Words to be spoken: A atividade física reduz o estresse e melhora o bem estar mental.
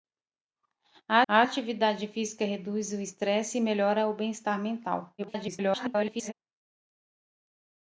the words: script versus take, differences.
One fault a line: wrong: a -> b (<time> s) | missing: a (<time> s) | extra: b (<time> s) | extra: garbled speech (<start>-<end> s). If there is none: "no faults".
extra: a (1.3 s)
extra: garbled speech (5.2-6.3 s)